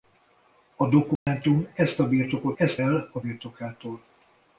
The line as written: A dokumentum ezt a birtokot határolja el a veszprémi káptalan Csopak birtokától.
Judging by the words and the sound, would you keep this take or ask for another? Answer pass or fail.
fail